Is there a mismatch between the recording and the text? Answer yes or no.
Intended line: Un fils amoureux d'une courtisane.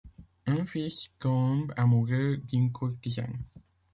yes